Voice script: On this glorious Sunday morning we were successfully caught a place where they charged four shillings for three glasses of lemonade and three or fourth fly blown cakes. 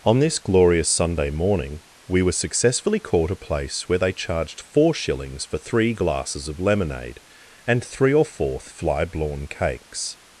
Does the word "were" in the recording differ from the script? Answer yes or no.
no